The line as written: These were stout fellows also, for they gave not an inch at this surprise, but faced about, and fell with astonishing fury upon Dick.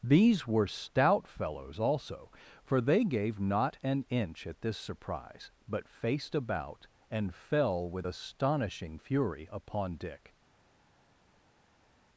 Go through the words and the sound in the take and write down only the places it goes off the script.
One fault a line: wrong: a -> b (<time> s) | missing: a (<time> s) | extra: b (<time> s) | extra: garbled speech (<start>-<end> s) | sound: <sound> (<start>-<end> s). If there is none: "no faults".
no faults